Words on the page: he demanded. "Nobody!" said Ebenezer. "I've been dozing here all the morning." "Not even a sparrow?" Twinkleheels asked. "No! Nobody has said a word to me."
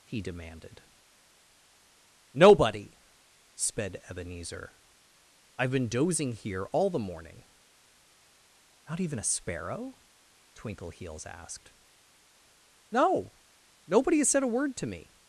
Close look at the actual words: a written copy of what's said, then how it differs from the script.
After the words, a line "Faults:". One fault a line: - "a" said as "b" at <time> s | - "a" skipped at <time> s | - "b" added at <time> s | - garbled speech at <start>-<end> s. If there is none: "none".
he demanded. "Nobody!" sped Ebenezer. "I've been dozing here all the morning." "Not even a sparrow?" Twinkleheels asked. "No! Nobody has said a word to me."
Faults:
- "said" said as "sped" at 3.5 s